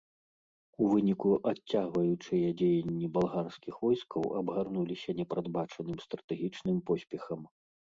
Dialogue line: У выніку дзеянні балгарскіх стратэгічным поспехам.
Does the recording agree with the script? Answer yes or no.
no